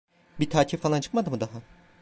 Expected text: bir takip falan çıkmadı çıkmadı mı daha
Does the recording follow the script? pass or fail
fail